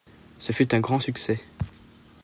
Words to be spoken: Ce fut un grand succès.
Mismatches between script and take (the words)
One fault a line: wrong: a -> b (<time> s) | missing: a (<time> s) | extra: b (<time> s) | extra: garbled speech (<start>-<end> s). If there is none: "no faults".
no faults